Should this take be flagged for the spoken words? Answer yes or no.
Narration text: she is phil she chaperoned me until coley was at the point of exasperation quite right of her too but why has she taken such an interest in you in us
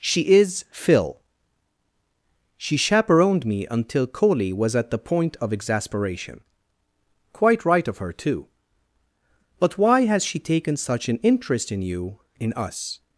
no